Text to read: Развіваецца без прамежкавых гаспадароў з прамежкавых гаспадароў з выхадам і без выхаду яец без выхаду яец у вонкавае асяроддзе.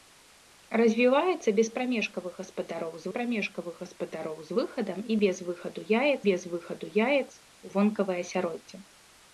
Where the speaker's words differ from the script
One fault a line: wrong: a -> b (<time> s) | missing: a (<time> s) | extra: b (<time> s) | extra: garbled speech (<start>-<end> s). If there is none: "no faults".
no faults